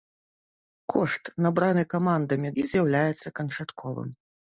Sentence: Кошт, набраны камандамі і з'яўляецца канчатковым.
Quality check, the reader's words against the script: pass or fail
pass